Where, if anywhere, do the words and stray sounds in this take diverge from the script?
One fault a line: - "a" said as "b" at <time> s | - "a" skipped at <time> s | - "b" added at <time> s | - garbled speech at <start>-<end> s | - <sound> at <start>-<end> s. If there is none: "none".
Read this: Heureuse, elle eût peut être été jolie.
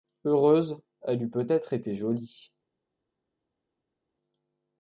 none